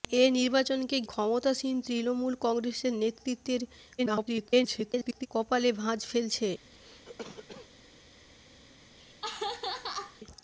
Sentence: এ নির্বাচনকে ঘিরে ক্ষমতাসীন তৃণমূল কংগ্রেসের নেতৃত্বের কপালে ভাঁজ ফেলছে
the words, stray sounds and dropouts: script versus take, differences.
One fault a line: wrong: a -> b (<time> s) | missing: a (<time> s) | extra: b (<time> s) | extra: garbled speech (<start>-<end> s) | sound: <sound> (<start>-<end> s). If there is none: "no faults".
missing: ঘিরে (1.0 s)
extra: garbled speech (4.0-5.3 s)
sound: cough (6.7-7.7 s)
sound: laugh (9.0-10.2 s)